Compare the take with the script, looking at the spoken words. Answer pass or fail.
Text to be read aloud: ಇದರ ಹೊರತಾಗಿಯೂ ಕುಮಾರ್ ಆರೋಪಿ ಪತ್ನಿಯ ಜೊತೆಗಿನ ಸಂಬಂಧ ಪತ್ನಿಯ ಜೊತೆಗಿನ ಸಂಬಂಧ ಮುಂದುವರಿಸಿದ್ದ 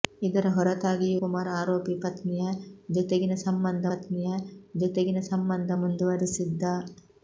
pass